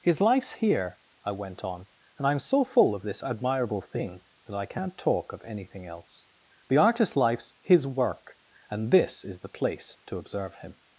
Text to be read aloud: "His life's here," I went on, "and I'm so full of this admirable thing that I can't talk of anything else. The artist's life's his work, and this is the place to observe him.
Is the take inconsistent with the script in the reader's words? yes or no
no